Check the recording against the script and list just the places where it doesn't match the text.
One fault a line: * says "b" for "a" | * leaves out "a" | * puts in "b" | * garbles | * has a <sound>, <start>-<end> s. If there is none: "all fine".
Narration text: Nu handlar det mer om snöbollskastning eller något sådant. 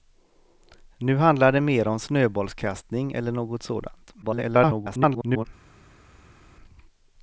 * garbles